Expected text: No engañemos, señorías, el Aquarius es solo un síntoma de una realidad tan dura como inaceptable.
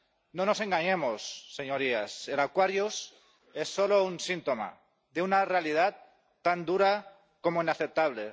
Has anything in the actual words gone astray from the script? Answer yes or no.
yes